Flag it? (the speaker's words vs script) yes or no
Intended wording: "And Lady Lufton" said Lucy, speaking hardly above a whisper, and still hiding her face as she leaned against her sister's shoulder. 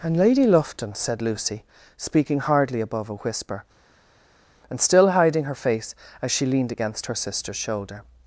no